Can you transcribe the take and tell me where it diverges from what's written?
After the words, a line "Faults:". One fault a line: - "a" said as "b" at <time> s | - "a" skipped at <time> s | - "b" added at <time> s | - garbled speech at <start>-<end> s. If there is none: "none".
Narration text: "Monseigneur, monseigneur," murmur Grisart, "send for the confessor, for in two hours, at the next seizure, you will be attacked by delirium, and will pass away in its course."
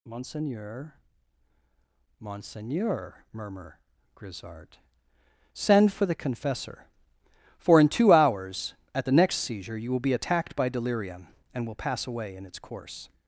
"Monseigneur, monseigneur," murmur Grisart, "send for the confessor, for in two hours, at the next seizure, you will be attacked by delirium, and will pass away in its course."
Faults:
none